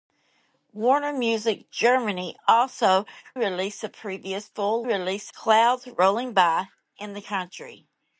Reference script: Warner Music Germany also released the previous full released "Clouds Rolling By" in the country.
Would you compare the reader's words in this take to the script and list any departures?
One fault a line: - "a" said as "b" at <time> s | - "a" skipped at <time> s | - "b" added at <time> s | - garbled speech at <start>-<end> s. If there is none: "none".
none